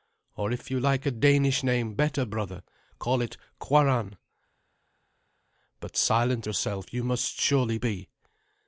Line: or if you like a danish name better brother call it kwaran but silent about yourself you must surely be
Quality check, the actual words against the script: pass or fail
fail